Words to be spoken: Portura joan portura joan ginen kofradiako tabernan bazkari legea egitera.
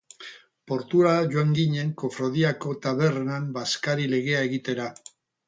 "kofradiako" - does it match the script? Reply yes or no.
yes